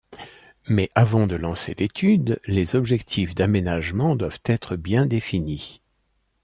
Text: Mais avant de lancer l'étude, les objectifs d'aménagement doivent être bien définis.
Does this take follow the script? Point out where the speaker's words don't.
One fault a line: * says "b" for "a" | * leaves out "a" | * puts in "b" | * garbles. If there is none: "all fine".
all fine